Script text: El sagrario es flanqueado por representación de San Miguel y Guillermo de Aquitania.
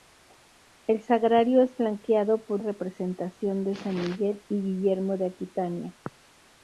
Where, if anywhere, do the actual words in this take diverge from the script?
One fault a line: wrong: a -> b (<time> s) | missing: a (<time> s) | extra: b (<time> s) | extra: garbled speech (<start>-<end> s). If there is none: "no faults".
no faults